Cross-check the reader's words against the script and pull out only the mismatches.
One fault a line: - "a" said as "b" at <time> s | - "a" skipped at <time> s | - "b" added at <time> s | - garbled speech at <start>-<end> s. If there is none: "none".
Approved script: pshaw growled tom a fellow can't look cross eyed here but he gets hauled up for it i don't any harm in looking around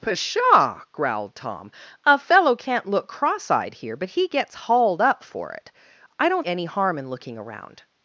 none